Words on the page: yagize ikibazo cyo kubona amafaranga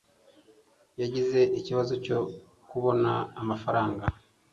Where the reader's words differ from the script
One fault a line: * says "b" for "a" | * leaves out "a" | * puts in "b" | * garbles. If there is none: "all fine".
all fine